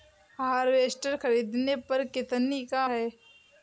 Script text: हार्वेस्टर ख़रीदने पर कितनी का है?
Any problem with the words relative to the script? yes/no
no